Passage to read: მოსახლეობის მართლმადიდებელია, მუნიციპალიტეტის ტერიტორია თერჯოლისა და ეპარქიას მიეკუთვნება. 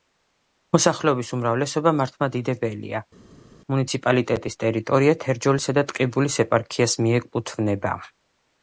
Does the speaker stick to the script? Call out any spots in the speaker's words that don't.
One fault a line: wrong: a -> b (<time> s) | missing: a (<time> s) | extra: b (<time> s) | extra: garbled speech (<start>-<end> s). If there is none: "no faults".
extra: უმრავლესობა (1.4 s)
extra: ტყიბულის (5.9 s)